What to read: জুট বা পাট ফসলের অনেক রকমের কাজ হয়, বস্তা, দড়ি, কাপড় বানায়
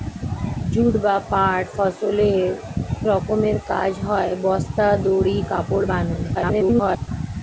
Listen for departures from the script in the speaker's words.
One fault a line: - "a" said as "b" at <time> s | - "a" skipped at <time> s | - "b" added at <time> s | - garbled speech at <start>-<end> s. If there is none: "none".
- "অনেক" skipped at 2.5 s
- garbled speech at 6.3-7.1 s